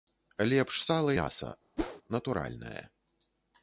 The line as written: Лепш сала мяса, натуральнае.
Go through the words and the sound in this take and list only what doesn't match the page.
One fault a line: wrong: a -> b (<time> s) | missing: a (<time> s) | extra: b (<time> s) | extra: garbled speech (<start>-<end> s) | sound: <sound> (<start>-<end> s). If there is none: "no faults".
sound: whoosh (1.8-2.0 s)